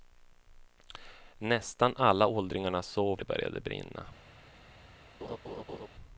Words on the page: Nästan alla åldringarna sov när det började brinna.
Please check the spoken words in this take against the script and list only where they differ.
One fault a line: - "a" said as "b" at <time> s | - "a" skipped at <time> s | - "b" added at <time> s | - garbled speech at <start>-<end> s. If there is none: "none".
- "när" skipped at 3.2 s